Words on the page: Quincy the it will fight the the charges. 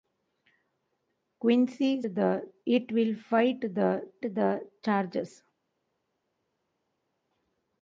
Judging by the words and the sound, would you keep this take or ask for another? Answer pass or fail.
pass